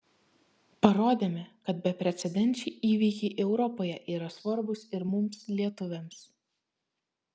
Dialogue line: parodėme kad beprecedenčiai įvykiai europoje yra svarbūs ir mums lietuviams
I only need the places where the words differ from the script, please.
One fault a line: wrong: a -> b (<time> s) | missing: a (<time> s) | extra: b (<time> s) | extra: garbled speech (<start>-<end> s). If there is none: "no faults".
no faults